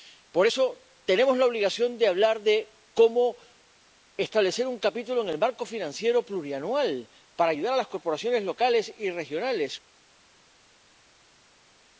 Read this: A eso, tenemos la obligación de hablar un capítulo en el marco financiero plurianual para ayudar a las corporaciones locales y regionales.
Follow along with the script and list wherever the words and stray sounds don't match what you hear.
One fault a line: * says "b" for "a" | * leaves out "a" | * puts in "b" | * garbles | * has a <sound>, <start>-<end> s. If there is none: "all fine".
* says "Por" for "A"
* puts in "de cómo establecer"